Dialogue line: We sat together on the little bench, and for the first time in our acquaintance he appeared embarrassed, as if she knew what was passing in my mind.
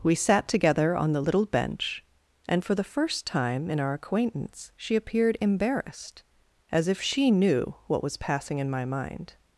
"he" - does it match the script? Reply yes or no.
no